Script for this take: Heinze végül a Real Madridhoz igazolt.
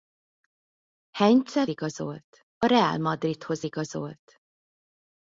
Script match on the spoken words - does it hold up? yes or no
no